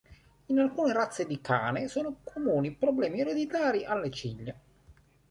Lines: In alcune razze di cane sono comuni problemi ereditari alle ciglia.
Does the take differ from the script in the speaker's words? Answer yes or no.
no